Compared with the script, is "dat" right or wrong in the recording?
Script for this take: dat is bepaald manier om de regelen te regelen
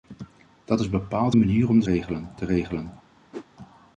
right